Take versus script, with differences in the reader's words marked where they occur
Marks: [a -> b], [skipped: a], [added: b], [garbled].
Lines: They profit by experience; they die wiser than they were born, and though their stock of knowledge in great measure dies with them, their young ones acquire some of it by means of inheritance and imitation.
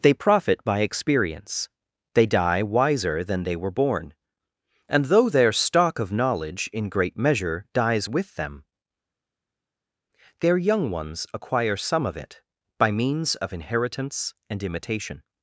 They profit by experience; they die wiser than they were born, and though their stock of knowledge in great measure dies with them, their young ones acquire some of it by means of inheritance and imitation.